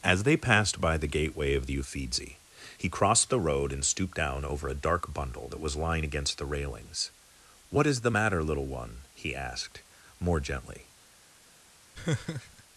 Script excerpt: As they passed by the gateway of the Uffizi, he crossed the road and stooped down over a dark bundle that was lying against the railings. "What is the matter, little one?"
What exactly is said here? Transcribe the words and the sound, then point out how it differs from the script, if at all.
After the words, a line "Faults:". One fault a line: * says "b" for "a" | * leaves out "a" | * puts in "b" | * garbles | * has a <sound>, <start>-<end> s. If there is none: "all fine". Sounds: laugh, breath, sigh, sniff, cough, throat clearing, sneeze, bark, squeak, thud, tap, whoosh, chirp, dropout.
As they passed by the gateway of the Uffizi, he crossed the road and stooped down over a dark bundle that was lying against the railings. "What is the matter, little one?" he asked, more gently
Faults:
* puts in "he asked more gently"
* has a laugh, 11.9-12.6 s